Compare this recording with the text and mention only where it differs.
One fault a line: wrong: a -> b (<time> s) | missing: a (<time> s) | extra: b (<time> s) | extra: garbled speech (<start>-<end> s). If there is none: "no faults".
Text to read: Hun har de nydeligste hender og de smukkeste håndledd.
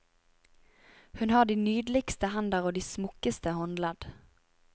no faults